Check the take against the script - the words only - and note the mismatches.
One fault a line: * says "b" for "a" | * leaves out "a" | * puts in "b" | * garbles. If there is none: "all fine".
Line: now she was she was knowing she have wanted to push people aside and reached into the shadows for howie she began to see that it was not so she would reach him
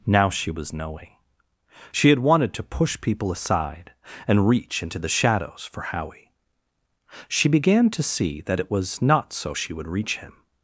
* leaves out "she was"
* says "had" for "have"
* says "reach" for "reached"